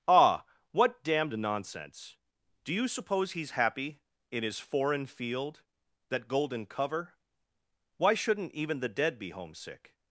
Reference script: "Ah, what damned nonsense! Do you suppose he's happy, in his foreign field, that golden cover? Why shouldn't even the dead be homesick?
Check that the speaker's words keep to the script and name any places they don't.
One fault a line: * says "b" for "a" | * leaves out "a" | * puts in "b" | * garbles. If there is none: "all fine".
all fine